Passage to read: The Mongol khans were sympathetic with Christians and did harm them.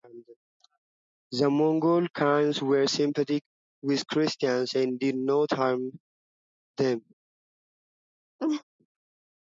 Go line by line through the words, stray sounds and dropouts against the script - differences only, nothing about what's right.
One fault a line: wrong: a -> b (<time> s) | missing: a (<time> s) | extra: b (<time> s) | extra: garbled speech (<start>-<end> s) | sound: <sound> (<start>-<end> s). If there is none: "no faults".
extra: not (5.2 s)
sound: laugh (8.4-8.6 s)